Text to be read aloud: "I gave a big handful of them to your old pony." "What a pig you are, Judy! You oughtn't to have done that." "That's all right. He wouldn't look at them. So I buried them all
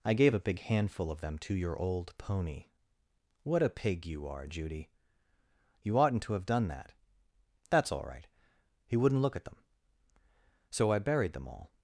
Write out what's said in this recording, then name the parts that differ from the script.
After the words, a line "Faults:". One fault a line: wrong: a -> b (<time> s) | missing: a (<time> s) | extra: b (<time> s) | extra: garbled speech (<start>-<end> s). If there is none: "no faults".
"I gave a big handful of them to your old pony." "What a pig you are, Judy! You oughtn't to have done that." "That's all right. He wouldn't look at them. So I buried them all
Faults:
no faults